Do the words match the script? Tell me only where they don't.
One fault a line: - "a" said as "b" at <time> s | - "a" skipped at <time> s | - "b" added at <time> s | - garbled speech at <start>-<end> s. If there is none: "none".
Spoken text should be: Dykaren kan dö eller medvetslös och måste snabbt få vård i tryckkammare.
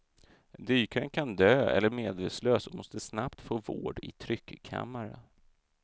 none